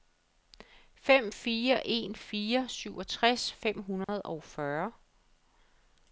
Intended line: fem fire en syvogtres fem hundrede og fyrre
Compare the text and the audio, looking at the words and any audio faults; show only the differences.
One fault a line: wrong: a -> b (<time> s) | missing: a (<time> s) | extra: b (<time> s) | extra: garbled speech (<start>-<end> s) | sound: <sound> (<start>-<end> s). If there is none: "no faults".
extra: fire (2.2 s)
sound: dropout (4.0-4.1 s)